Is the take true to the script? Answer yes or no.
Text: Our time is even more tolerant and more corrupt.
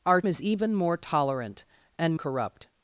no